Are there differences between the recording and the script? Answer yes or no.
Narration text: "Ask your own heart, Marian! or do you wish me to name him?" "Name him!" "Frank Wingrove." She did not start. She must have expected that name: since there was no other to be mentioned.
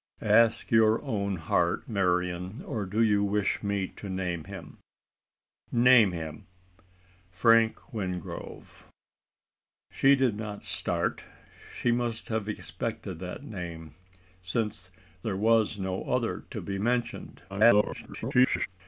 yes